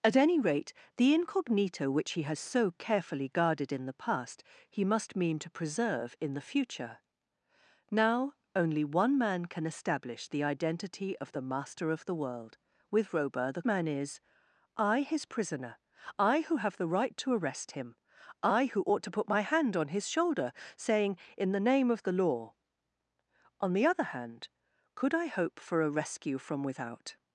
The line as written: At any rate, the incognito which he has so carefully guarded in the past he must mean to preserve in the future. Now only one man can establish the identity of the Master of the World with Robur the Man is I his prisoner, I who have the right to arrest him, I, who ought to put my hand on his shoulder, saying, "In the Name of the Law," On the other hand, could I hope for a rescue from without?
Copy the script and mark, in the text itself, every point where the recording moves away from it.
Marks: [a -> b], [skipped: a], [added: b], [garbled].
At any rate, the incognito which he has so carefully guarded in the past he must mean to preserve in the future. Now only one man can establish the identity of the Master of the World with Robur the Man is I his prisoner, I who have the right to arrest him, I, who ought to put my hand on his shoulder, saying, "In the Name of the Law," On the other hand, could I hope for a rescue from without?